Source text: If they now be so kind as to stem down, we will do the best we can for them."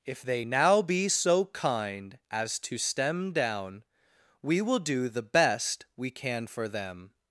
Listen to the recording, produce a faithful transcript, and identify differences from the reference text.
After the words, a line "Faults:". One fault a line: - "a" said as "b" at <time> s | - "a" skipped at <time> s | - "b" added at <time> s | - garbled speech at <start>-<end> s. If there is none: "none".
If they now be so kind as to stem down, we will do the best we can for them."
Faults:
none